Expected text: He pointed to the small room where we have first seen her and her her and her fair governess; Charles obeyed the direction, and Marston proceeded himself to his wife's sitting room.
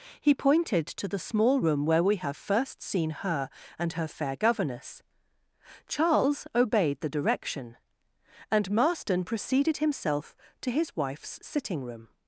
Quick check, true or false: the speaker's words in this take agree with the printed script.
false